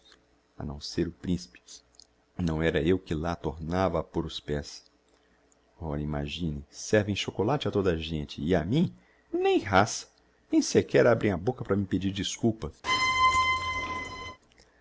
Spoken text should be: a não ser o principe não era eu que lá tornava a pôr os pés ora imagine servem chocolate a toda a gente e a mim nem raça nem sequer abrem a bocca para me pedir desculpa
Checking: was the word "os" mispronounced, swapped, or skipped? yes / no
no